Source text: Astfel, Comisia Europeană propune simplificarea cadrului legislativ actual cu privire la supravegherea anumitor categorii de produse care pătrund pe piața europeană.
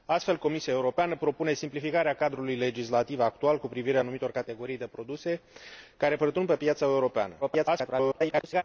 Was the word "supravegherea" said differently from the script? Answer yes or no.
yes